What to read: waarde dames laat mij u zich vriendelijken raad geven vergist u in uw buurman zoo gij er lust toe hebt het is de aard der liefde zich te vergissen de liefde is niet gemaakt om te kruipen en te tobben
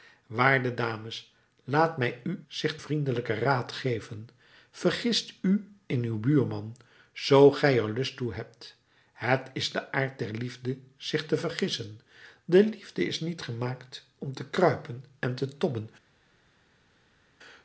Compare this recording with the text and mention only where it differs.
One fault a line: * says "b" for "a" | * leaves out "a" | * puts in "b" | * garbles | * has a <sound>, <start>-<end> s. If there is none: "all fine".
all fine